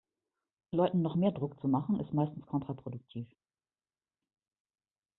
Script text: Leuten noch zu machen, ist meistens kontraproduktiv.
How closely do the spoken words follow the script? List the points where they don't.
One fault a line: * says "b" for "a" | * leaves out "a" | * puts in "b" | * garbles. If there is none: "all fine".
* puts in "mehr Druck"